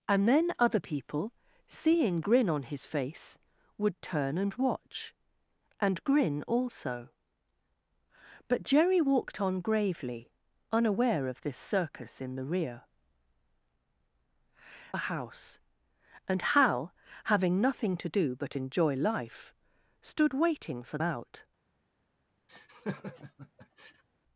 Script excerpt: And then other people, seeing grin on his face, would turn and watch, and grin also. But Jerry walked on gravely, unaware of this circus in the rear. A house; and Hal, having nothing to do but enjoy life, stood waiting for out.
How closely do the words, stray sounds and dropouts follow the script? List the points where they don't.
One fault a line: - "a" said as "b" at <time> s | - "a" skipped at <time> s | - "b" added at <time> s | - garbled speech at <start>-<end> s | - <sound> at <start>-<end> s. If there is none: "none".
- laugh at 22.5-24.0 s